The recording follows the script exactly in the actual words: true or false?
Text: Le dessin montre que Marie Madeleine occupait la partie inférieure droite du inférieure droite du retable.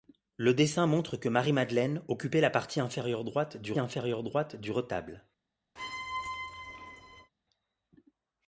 true